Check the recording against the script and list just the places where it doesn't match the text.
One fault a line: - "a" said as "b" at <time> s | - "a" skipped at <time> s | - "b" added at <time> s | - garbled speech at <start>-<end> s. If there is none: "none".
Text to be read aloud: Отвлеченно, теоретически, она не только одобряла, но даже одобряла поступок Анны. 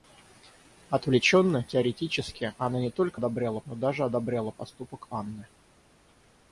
none